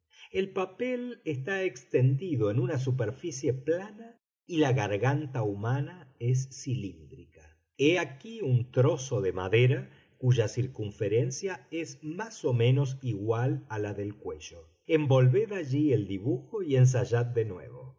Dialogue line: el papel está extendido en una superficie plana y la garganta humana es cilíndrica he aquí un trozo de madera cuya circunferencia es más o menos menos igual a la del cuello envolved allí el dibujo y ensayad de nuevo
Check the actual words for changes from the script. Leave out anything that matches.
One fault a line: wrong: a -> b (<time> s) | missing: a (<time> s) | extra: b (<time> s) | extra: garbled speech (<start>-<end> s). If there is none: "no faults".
missing: menos (13.0 s)